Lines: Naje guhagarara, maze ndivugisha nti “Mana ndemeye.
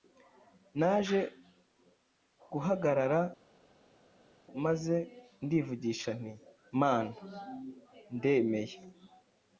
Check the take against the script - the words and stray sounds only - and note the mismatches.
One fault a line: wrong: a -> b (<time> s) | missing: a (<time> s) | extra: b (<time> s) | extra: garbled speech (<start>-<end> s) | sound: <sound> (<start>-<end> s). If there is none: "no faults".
no faults